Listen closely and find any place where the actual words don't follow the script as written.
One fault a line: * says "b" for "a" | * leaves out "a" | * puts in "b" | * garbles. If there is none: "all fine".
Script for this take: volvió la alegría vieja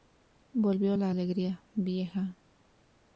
all fine